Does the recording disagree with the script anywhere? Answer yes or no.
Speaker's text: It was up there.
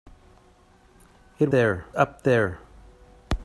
yes